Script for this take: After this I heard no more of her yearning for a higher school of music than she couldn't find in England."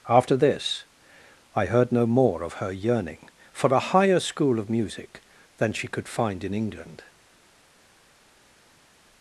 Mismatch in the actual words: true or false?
true